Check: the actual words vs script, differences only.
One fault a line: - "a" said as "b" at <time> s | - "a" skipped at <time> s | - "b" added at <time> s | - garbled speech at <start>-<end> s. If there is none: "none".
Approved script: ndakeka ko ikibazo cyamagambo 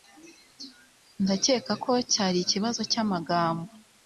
- "cyari" added at 2.1 s